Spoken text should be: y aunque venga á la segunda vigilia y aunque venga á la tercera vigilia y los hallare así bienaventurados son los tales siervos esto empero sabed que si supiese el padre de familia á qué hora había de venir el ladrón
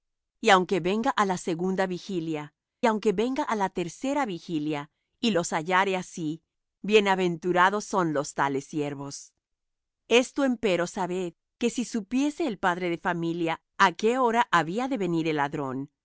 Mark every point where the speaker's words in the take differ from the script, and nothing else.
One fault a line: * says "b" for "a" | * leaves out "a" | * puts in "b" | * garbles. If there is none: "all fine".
* leaves out "y"